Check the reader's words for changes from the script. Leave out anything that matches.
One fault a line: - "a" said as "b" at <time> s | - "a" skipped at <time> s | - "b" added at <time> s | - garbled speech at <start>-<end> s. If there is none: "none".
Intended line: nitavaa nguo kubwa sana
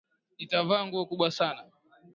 none